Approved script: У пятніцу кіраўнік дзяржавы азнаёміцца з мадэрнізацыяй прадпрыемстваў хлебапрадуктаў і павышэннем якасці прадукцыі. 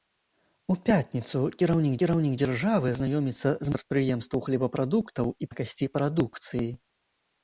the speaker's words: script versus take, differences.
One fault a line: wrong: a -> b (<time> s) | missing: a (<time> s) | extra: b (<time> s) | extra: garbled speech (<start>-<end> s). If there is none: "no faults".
extra: кіраўнік (2.0 s)
missing: мадэрнізацыяй (3.8 s)
missing: павышэннем (5.5 s)